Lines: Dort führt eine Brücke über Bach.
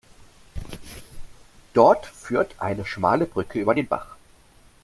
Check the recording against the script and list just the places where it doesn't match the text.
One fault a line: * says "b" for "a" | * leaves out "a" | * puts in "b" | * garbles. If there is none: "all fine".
* puts in "schmale"
* puts in "den"